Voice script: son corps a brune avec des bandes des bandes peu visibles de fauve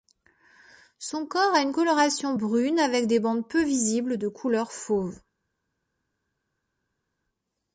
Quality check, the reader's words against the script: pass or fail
fail